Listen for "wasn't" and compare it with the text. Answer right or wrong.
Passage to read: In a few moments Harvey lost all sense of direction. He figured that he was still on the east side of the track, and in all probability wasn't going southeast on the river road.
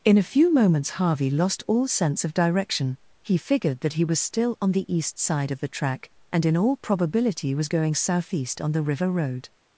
wrong